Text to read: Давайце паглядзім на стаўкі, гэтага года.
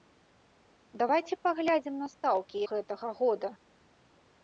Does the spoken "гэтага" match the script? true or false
true